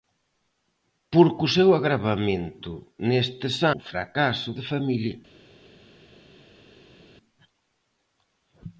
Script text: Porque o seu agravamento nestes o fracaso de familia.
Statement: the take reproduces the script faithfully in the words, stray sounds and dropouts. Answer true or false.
true